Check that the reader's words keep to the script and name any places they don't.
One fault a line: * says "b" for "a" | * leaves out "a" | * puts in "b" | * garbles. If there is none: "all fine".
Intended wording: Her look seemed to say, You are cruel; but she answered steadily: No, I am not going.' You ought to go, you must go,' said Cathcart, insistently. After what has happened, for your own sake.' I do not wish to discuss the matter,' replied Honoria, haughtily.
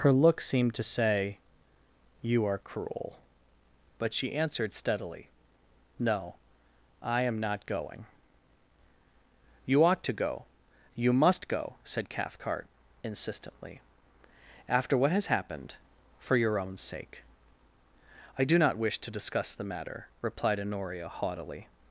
all fine